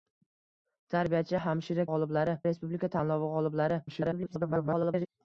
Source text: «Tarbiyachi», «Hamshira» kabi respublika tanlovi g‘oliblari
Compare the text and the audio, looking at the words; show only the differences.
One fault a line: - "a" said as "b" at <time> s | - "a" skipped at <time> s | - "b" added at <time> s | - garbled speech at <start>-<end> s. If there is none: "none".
- "kabi" said as "g‘oliblari" at 1.9 s
- garbled speech at 3.9-5.1 s